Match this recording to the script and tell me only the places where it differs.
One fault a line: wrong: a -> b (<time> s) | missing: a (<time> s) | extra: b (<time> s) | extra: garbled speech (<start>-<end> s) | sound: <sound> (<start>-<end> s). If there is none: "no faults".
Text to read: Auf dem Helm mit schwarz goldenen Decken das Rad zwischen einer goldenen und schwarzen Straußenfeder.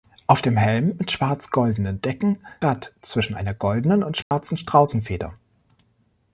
missing: das (2.4 s)
sound: dropout (4.2-4.3 s)